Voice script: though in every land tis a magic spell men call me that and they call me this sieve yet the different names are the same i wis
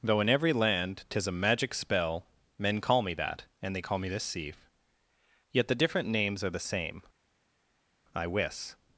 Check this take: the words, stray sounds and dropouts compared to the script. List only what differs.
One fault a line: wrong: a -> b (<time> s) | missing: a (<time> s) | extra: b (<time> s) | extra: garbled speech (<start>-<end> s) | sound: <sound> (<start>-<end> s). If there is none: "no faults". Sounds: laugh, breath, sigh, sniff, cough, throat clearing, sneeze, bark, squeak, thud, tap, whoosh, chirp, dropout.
no faults